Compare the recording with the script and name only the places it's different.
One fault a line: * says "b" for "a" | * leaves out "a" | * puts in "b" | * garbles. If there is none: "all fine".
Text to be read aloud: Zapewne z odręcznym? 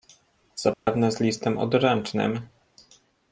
* puts in "listem"